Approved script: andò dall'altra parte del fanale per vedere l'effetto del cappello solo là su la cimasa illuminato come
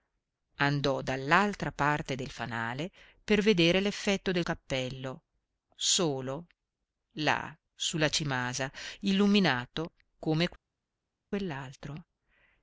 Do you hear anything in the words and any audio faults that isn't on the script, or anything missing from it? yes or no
no